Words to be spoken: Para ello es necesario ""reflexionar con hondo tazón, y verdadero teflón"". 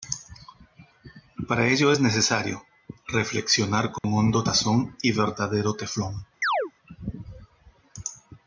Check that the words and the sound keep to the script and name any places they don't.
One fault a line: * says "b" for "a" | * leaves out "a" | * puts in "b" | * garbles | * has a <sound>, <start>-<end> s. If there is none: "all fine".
* has a dropout, 4.0-4.0 s
* has a chirp, 6.4-6.7 s